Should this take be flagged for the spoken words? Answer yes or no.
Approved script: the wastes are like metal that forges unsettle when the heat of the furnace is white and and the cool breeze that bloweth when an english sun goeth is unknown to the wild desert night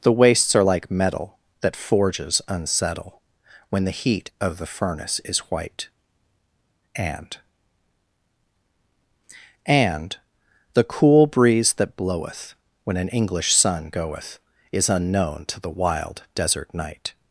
no